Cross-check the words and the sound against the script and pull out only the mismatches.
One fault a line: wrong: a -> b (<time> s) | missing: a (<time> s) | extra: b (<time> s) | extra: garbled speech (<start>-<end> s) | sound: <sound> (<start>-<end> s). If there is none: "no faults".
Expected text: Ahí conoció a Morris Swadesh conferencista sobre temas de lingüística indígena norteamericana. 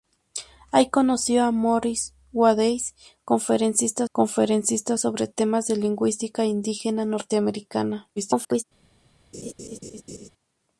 extra: conferencista (4.1 s)
extra: garbled speech (8.2-8.6 s)
sound: laugh (9.3-10.3 s)